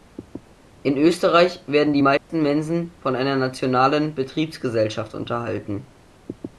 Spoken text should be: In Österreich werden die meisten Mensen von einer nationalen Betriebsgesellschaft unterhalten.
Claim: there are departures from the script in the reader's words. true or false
false